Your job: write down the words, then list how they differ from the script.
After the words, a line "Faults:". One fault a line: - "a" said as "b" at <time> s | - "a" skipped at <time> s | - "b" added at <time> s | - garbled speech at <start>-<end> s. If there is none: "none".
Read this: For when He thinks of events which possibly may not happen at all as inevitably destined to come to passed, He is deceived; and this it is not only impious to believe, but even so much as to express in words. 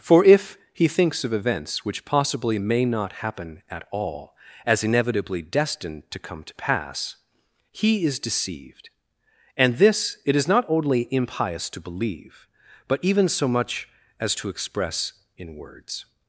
For if He thinks of events which possibly may not happen at all as inevitably destined to come to pass, He is deceived; and this it is not only impious to believe, but even so much as to express in words.
Faults:
- "when" said as "if" at 0.2 s
- "passed" said as "pass" at 6.5 s